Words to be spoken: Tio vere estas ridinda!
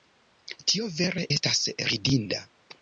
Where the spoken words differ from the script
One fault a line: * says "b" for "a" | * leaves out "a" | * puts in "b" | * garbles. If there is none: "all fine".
all fine